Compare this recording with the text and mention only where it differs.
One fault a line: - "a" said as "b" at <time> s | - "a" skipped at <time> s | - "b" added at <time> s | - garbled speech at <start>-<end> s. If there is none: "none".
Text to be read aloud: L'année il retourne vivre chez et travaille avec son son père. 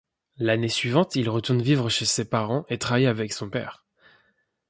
- "suivante" added at 0.7 s
- "ses parents" added at 2.0 s
- "son" skipped at 3.5 s